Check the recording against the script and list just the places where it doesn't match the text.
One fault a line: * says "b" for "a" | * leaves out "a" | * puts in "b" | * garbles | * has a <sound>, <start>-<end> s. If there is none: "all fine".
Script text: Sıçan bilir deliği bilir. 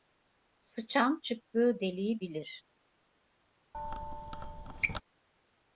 * says "çıktığı" for "bilir"
* has a squeak, 3.7-5.0 s